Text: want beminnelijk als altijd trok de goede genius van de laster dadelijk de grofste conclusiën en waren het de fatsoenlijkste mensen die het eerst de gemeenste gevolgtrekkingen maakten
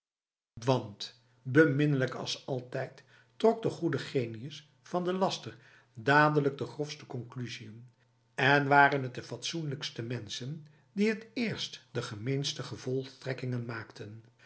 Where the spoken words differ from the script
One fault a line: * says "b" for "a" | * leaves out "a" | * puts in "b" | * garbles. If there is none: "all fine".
all fine